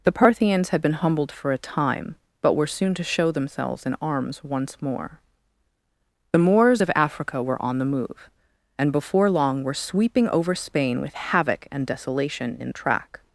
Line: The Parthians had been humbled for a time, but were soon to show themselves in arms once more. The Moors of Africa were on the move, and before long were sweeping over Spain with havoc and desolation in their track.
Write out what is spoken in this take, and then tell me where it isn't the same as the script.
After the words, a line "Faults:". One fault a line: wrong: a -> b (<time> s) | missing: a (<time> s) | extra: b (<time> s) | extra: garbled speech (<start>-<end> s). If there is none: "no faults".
The Parthians had been humbled for a time, but were soon to show themselves in arms once more. The Moors of Africa were on the move, and before long were sweeping over Spain with havoc and desolation in track.
Faults:
missing: their (12.7 s)